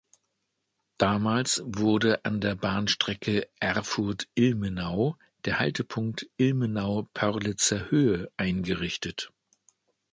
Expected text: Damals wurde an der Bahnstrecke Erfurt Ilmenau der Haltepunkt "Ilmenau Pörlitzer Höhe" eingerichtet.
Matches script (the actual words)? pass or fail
pass